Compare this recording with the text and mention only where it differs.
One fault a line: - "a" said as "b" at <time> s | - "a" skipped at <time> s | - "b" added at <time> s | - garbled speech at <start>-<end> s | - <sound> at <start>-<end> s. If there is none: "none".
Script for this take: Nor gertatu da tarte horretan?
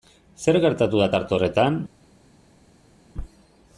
- "Nor" said as "Zer" at 0.4 s